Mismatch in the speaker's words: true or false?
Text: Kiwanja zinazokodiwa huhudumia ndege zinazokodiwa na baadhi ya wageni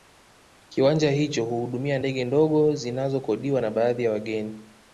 true